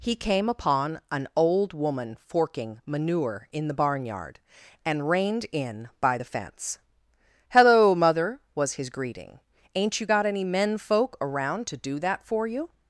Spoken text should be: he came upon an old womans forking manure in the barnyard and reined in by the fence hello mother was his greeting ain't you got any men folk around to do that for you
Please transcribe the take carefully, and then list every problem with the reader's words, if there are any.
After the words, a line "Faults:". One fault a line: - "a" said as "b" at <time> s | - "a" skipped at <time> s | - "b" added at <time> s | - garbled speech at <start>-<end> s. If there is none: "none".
he came upon an old woman forking manure in the barnyard and reined in by the fence hello mother was his greeting ain't you got any men folk around to do that for you
Faults:
- "womans" said as "woman" at 1.7 s